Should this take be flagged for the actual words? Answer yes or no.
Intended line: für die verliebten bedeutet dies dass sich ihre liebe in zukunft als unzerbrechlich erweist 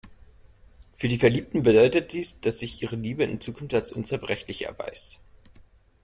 no